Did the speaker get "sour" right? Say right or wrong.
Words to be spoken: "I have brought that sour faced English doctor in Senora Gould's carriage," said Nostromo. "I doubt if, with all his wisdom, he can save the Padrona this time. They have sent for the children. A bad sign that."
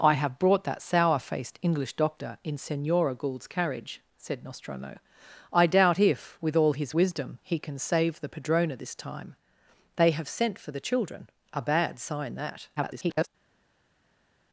right